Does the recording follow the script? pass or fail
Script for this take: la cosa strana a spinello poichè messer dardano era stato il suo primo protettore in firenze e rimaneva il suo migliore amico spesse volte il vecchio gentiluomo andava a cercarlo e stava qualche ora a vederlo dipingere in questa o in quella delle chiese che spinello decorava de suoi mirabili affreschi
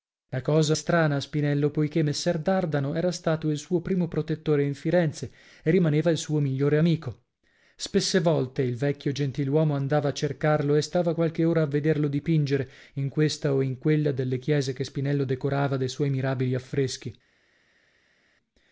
pass